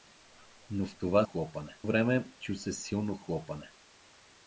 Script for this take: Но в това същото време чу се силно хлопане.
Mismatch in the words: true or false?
true